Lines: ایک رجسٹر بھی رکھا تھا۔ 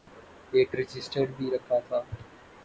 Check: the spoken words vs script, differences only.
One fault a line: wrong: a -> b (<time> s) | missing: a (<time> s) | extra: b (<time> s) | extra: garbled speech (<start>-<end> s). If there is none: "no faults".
no faults